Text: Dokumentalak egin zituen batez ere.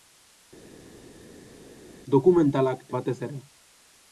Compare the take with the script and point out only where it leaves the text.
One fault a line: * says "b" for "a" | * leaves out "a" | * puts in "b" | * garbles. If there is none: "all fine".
* leaves out "egin zituen"